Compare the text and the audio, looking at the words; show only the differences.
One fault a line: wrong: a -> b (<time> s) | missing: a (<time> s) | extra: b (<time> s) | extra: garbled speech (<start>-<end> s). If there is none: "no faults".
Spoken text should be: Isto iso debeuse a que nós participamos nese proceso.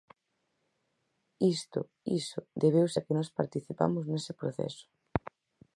no faults